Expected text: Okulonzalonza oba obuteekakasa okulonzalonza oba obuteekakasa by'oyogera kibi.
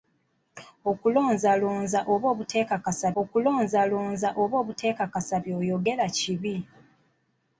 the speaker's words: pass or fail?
pass